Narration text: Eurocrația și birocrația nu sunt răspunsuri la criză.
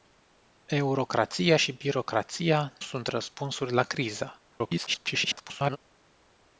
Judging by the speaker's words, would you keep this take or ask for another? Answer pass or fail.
fail